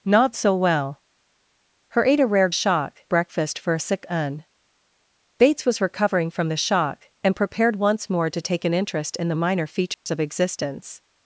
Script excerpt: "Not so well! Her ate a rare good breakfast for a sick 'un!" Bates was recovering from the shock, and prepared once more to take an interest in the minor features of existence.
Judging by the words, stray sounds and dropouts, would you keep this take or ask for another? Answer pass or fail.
fail